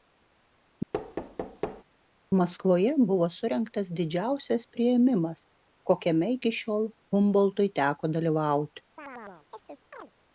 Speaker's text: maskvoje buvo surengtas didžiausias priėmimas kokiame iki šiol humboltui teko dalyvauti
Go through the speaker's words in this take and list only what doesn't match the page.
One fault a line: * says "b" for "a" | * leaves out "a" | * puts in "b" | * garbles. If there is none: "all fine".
all fine